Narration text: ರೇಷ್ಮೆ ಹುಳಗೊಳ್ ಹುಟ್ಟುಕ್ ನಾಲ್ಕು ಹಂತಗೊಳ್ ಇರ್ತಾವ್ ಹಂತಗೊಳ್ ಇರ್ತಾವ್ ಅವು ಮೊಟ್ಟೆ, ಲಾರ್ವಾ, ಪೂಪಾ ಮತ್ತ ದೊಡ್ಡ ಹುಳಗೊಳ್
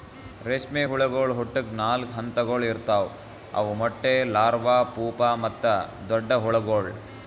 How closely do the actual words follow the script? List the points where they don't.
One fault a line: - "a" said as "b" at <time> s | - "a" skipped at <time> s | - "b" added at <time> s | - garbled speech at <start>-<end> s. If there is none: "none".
- "ಹಂತಗೊಳ್ ಇರ್ತಾವ್" skipped at 3.1 s